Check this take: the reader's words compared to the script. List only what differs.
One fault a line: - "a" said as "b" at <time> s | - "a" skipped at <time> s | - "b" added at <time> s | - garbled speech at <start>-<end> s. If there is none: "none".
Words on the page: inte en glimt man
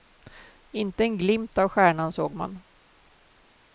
- "av stjärnan såg" added at 1.6 s